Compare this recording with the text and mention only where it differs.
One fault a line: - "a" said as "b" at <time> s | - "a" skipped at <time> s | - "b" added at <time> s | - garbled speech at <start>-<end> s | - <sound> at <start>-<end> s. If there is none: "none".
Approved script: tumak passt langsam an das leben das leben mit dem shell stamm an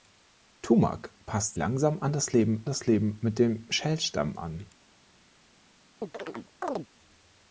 - chirp at 6.0-6.9 s